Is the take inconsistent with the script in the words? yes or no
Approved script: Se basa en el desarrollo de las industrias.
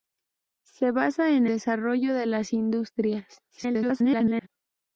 yes